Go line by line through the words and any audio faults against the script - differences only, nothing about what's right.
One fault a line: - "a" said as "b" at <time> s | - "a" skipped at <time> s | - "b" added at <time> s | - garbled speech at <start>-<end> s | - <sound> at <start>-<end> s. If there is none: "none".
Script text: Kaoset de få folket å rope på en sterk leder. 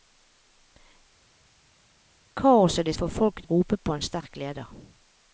none